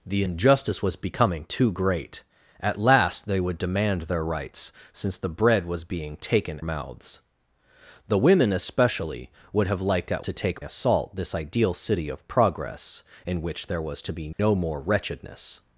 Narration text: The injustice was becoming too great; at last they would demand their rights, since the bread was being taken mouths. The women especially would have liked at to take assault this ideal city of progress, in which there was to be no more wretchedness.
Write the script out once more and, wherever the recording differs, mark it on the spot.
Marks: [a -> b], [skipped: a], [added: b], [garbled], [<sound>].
The injustice was becoming too great; at last they would demand their rights, since the bread was being taken mouths. The women especially would have liked at to take assault this ideal city of progress, in which there was to be no [dropout] more wretchedness.